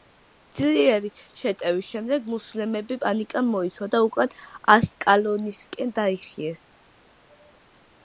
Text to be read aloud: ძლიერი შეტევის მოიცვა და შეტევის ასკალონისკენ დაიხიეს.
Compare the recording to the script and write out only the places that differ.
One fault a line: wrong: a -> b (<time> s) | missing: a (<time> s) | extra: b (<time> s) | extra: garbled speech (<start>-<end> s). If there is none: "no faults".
extra: შემდეგ მუსლიმები პანიკამ (1.9 s)
wrong: შეტევის -> უკან (4.1 s)